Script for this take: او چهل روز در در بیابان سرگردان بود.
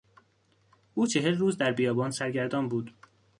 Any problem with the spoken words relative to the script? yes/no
yes